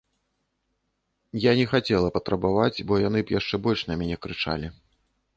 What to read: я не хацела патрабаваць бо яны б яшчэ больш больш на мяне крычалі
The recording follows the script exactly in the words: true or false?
false